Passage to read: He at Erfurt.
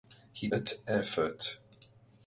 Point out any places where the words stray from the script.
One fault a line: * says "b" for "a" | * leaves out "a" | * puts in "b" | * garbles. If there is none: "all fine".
all fine